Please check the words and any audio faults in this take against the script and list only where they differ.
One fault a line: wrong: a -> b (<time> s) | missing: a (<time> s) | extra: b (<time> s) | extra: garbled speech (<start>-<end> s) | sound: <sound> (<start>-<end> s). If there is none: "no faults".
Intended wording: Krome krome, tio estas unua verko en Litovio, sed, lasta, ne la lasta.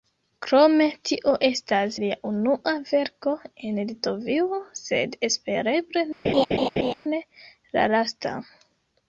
missing: krome (0.8 s)
extra: lia (2.0 s)
wrong: lasta -> espereble (5.3 s)
sound: laugh (6.2-6.9 s)